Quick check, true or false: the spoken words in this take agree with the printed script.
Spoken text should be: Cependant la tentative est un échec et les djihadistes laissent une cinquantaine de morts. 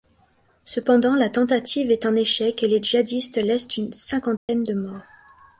true